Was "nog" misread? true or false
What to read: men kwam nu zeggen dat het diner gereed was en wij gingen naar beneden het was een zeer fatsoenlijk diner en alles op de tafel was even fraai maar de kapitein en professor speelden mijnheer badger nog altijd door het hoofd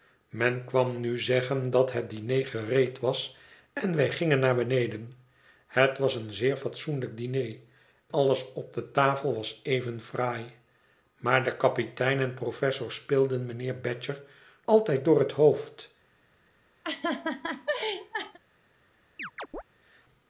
true